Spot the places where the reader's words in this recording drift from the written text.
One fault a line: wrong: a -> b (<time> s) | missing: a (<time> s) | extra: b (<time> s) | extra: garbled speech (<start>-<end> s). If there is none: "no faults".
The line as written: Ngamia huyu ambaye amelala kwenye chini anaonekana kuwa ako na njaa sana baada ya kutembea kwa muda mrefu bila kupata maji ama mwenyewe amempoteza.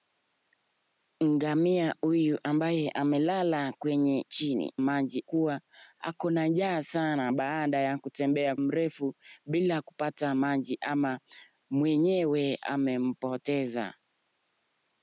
wrong: anaonekana -> maji (4.8 s)
missing: kwa muda (8.5 s)